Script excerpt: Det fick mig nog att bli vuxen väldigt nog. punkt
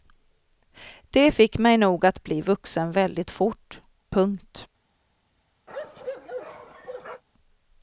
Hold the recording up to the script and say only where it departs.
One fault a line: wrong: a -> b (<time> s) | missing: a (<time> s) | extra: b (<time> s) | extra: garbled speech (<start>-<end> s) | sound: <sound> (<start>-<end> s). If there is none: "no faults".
wrong: nog -> fort (3.3 s)
sound: bark (5.7-7.2 s)